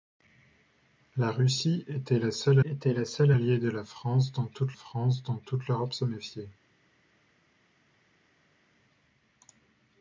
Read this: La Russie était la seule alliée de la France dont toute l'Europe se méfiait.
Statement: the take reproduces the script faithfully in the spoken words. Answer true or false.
false